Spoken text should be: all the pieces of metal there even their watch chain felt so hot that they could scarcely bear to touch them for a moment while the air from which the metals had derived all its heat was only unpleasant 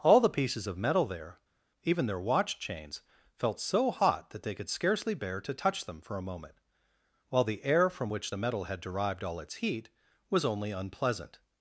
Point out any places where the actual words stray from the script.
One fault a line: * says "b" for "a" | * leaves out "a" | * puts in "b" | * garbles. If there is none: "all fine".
* says "chains" for "chain"
* says "metal" for "metals"